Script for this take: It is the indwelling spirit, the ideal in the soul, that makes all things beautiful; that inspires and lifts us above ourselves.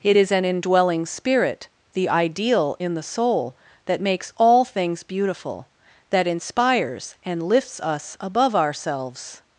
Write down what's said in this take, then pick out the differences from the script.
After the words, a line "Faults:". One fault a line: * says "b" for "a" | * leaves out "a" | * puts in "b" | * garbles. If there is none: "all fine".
It is an indwelling spirit, the ideal in the soul, that makes all things beautiful; that inspires and lifts us above ourselves.
Faults:
* says "an" for "the"